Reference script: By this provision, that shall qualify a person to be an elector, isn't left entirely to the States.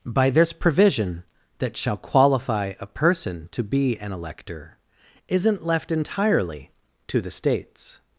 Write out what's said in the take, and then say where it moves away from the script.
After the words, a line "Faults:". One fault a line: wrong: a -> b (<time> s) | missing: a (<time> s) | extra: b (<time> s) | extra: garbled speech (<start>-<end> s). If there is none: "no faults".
By this provision, that shall qualify a person to be an elector, isn't left entirely to the States.
Faults:
no faults